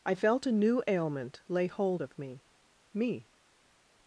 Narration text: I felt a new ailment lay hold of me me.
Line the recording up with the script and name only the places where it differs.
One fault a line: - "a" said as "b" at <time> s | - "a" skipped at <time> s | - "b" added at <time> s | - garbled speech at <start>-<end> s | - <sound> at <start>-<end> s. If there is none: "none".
none